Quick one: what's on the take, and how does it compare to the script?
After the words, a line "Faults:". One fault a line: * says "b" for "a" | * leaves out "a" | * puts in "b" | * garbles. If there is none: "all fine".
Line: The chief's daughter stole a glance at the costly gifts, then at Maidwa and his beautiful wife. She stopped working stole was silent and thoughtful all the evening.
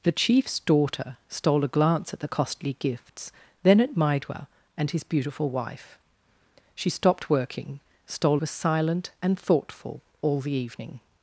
The chief's daughter stole a glance at the costly gifts, then at Maidwa and his beautiful wife. She stopped working stole was silent and thoughtful all the evening.
Faults:
all fine